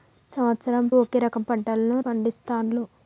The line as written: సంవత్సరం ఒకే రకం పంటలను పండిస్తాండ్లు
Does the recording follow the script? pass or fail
pass